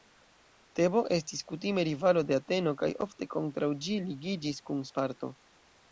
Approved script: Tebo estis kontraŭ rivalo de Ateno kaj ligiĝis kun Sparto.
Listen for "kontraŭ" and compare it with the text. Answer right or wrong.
wrong